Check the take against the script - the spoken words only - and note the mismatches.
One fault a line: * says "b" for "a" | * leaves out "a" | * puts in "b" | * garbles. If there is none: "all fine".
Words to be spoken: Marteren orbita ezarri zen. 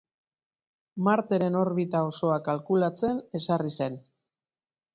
* puts in "osoa kalkulatzen"